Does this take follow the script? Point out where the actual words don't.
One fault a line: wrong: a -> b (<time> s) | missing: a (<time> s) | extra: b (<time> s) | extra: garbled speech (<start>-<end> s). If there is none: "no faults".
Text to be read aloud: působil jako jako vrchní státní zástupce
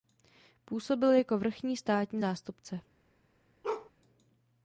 missing: jako (1.4 s)